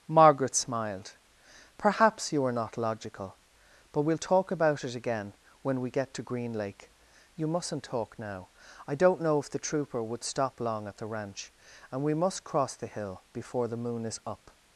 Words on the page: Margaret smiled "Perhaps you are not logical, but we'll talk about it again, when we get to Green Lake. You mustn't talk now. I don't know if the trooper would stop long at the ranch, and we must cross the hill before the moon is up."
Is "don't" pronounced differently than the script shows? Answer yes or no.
no